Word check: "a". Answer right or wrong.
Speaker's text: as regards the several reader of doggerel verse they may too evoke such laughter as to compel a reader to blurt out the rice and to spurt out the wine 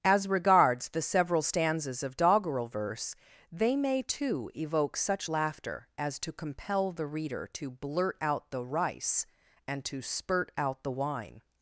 wrong